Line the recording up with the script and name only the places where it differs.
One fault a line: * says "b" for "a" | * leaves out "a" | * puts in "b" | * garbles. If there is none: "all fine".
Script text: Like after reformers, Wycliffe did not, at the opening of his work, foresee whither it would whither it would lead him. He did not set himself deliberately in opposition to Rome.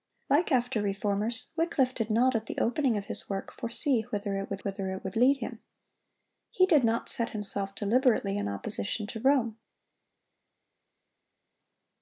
all fine